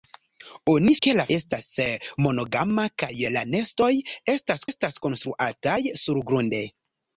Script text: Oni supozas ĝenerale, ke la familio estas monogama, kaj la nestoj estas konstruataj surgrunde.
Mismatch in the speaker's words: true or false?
true